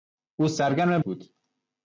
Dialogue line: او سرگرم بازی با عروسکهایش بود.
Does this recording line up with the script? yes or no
no